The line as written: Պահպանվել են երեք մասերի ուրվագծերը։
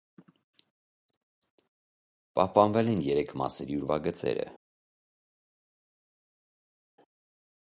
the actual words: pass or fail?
pass